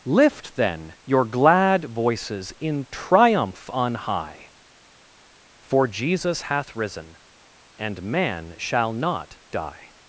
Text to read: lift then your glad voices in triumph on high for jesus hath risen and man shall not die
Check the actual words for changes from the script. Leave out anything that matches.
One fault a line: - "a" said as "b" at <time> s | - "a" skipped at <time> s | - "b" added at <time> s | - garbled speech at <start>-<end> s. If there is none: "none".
none